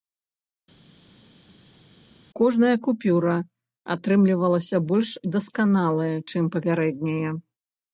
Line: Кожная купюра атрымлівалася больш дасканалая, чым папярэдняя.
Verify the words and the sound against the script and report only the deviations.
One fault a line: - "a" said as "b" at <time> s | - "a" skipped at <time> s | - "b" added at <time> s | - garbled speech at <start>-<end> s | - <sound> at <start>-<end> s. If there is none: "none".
none